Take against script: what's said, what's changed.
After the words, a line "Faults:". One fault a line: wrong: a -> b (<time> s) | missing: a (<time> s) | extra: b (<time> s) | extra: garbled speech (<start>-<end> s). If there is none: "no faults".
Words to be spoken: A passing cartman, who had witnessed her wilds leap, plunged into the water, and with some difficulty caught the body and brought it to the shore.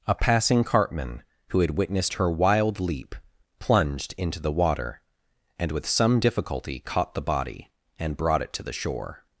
A passing cartman, who had witnessed her wild leap, plunged into the water, and with some difficulty caught the body and brought it to the shore.
Faults:
wrong: wilds -> wild (2.3 s)